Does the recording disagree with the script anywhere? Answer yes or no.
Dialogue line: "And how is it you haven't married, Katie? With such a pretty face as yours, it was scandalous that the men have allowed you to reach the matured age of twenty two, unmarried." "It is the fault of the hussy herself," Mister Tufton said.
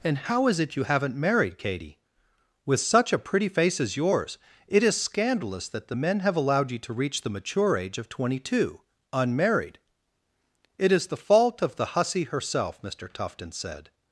yes